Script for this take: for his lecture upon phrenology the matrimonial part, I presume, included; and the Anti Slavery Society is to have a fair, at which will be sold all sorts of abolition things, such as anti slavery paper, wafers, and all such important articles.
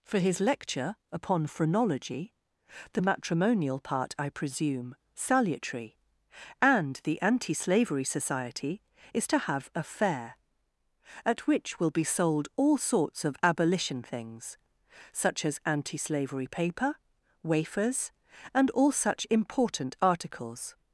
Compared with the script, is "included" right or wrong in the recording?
wrong